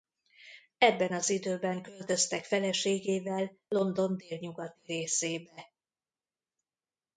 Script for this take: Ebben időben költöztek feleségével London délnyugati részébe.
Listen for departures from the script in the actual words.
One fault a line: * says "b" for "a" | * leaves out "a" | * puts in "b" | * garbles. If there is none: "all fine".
* puts in "az"